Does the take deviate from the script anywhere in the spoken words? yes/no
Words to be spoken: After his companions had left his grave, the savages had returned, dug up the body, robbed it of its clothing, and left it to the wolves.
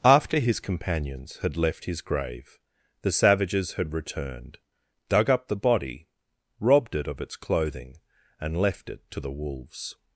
no